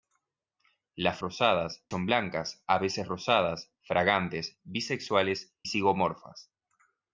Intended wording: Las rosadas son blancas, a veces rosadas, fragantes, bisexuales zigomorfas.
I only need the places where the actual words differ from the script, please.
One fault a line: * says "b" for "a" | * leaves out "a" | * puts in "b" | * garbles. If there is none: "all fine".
all fine